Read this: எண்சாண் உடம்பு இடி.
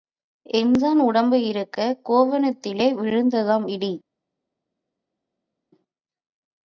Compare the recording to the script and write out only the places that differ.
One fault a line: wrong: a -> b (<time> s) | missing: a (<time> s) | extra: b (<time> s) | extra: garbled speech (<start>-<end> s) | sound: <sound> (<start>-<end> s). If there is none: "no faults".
extra: இருக்கக் கோவணத்திலே விழுந்ததாம் (1.4 s)